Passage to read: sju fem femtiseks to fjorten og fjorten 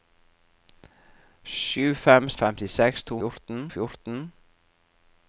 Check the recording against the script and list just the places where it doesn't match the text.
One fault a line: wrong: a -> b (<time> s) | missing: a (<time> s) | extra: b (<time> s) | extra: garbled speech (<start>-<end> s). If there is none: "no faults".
no faults